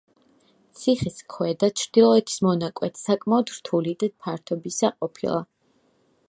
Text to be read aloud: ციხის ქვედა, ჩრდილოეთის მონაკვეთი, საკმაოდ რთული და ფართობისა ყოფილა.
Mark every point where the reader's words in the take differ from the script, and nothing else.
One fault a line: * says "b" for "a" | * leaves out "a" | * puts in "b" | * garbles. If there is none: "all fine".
all fine